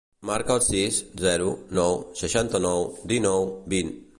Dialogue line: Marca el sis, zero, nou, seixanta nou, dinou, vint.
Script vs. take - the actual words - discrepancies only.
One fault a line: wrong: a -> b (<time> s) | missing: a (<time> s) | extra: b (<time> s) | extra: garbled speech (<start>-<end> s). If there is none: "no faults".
no faults